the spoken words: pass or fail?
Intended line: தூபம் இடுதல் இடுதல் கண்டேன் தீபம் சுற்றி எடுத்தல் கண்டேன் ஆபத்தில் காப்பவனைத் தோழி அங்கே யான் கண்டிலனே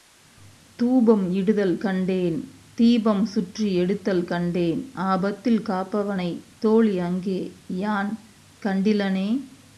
fail